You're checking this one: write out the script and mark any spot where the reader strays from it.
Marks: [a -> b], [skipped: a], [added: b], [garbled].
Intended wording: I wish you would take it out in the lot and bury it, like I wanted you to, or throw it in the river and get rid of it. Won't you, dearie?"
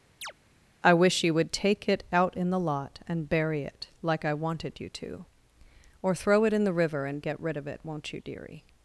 I wish you would take it out in the lot and bury it, like I wanted you to, or throw it in the river and get rid of it. Won't you, dearie?"